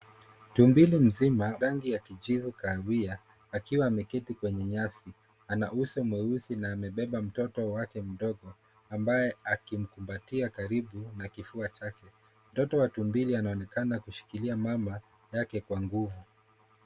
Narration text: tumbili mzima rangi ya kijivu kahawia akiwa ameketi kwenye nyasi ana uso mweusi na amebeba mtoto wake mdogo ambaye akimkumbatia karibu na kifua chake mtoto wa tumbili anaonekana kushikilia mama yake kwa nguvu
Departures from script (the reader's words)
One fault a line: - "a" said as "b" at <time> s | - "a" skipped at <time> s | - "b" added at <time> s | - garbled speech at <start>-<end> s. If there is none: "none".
none